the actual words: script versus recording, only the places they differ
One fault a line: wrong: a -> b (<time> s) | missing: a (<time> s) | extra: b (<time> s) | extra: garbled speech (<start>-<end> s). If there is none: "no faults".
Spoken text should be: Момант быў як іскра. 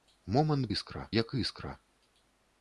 wrong: быў -> іскра (0.7 s)